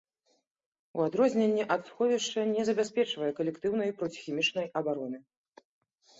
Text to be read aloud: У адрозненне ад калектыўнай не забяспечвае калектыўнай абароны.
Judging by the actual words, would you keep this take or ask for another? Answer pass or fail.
fail